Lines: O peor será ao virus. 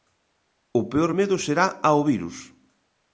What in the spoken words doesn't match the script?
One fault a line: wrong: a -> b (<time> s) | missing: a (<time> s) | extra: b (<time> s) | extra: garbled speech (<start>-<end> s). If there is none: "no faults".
extra: medo (1.2 s)